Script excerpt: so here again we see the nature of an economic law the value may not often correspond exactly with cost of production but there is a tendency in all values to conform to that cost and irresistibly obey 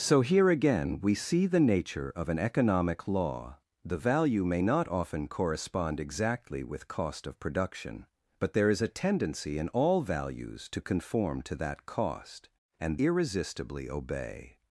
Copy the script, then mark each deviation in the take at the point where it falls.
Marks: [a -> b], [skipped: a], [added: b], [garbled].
so here again we see the nature of an economic law the value may not often correspond exactly with cost of production but there is a tendency in all values to conform to that cost and irresistibly obey